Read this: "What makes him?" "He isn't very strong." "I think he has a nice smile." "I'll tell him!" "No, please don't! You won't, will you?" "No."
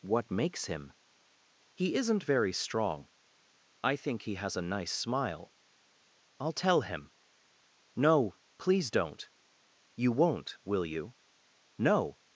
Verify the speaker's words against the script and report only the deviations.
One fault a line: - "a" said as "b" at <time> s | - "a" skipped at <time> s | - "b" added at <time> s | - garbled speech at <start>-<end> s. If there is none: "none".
none